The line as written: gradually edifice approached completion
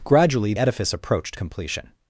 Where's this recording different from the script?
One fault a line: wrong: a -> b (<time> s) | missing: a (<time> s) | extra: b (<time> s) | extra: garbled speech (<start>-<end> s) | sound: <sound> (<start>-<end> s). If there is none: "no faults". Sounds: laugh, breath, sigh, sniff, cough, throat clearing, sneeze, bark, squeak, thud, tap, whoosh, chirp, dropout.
no faults